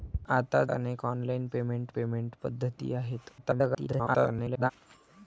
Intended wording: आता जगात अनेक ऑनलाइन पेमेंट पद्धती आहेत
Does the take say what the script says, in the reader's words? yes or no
no